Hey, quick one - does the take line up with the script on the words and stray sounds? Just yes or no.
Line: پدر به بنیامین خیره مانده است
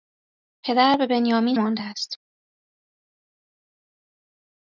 no